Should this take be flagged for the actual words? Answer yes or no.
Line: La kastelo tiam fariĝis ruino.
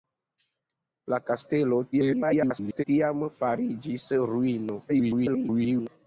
yes